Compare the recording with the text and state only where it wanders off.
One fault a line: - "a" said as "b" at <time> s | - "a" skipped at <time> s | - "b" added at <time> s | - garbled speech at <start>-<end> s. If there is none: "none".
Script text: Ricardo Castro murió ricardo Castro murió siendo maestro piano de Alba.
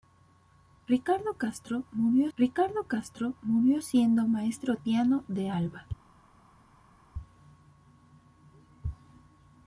none